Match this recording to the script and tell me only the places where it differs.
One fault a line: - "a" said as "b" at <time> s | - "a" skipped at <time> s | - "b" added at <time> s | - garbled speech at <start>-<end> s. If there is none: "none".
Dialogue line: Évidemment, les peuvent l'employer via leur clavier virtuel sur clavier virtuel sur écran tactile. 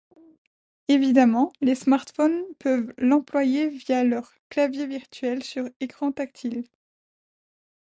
- "smartphones" added at 1.8 s
- "clavier virtuel sur" skipped at 5.7 s